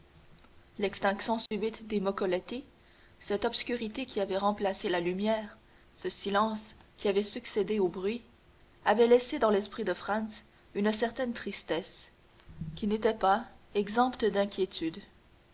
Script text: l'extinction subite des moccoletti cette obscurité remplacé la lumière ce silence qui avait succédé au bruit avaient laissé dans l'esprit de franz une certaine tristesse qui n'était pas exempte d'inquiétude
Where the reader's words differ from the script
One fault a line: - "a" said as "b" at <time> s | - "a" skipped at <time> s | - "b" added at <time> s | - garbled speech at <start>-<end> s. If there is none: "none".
- "qui avait" added at 4.1 s